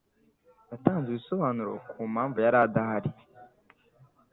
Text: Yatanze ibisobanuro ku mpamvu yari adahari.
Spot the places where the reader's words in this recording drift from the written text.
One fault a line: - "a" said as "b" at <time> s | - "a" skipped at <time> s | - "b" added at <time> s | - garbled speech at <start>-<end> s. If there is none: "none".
none